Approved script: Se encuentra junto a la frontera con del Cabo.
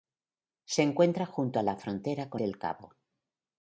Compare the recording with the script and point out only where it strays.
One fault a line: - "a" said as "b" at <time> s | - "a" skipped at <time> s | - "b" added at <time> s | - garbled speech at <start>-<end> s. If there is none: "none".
none